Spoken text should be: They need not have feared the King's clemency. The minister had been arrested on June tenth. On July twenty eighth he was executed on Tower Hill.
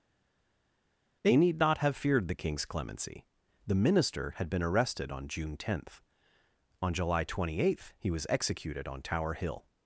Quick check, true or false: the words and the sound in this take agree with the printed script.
true